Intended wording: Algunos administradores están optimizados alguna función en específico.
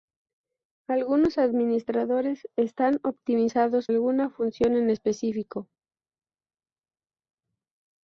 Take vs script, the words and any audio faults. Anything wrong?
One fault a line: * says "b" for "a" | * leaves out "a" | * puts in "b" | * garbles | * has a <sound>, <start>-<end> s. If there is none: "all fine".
all fine